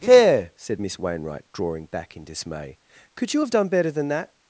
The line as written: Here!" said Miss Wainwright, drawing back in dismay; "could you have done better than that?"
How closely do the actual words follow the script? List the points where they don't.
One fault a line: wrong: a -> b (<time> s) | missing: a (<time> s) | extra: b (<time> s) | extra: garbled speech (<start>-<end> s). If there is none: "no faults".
no faults